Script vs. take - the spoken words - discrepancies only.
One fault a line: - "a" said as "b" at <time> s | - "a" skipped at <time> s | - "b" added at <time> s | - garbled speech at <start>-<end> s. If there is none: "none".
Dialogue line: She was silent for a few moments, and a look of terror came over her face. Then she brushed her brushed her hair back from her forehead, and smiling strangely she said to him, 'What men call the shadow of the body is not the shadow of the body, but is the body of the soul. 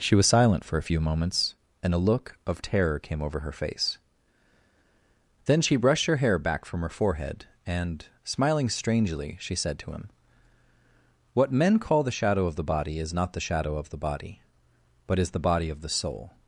- "brushed her" skipped at 6.2 s